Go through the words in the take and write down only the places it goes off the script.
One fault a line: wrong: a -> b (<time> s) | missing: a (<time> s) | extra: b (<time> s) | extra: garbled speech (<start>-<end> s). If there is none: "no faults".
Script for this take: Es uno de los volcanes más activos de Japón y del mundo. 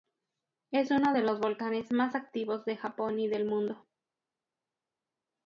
no faults